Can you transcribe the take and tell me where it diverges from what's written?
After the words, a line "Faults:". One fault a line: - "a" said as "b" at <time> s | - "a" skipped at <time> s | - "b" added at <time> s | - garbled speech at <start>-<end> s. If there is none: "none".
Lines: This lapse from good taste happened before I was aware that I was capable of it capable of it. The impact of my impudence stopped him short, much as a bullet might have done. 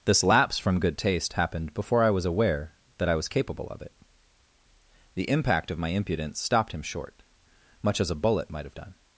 This lapse from good taste happened before I was aware that I was capable of it. The impact of my impudence stopped him short, much as a bullet might have done.
Faults:
- "capable of it" skipped at 3.9 s